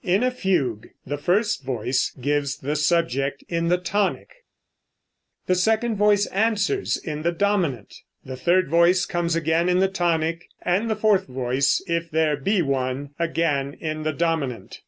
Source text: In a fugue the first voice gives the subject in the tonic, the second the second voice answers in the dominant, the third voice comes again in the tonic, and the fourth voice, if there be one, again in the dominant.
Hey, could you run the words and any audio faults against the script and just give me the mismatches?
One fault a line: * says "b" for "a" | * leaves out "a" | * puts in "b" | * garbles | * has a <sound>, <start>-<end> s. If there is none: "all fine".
* leaves out "the second"